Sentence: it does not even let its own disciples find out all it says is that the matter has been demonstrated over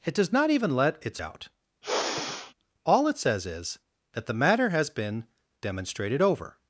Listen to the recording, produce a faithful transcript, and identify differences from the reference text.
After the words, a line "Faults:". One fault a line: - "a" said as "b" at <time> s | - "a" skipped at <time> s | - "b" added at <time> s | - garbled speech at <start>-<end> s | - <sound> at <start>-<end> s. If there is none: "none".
it does not even let its out all it says is that the matter has been demonstrated over
Faults:
- "own disciples find" skipped at 1.2 s
- sigh at 1.8-2.5 s